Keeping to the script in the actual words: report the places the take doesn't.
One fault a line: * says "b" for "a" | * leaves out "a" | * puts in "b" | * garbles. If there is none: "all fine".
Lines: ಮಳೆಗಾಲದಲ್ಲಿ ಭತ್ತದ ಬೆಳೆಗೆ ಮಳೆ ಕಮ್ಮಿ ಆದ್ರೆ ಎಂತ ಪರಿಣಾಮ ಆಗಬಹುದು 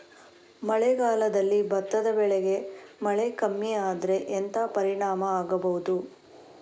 all fine